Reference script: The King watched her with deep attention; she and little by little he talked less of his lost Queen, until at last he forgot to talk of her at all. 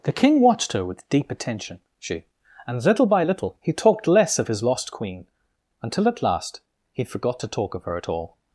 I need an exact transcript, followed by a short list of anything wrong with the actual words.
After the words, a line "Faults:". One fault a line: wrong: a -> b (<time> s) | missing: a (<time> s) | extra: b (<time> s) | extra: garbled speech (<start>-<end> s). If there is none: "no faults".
The King watched her with deep attention; she and little by little he talked less of his lost Queen, until at last he forgot to talk of her at all.
Faults:
no faults